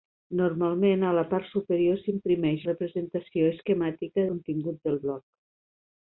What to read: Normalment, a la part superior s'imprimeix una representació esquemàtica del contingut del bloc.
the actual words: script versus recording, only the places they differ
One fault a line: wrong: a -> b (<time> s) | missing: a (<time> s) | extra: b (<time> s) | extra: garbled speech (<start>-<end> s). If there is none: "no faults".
missing: una (2.6 s)
missing: del (4.3 s)